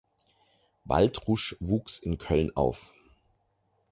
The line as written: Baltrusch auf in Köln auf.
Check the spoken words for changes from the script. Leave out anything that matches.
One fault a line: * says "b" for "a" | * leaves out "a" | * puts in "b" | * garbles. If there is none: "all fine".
* says "wuchs" for "auf"